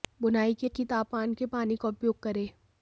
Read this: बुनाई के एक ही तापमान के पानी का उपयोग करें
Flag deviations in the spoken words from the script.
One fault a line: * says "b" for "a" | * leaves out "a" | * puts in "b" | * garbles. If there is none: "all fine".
all fine